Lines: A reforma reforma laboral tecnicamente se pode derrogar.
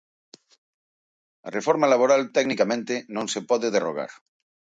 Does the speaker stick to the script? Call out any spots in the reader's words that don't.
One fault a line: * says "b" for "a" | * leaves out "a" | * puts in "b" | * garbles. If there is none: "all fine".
* leaves out "reforma"
* puts in "non"